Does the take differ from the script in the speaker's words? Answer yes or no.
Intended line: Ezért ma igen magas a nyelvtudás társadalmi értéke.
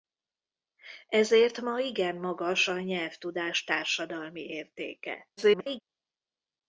yes